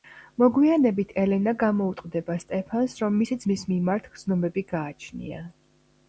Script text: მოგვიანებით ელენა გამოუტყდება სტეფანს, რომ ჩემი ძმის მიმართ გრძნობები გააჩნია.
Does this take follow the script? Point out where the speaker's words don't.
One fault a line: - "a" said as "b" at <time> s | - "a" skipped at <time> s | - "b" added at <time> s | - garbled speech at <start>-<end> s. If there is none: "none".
- "ჩემი" said as "მისი" at 3.2 s